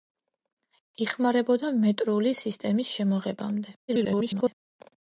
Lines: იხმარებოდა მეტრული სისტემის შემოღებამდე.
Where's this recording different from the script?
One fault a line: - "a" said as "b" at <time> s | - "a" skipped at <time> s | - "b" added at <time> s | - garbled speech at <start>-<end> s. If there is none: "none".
- garbled speech at 3.9-4.6 s